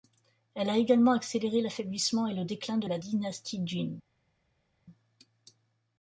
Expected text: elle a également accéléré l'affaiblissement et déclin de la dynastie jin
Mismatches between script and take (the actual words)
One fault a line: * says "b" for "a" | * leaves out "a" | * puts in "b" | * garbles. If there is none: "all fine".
* puts in "le"